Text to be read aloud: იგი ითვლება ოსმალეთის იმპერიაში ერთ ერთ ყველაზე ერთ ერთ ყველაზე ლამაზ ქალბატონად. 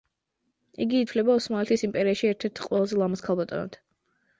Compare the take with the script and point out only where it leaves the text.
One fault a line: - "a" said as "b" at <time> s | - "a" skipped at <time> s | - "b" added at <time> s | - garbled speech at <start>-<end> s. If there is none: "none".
- "ერთ ერთ ყველაზე" skipped at 3.0 s